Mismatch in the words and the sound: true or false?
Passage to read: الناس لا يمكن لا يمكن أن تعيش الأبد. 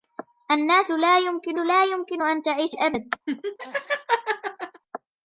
true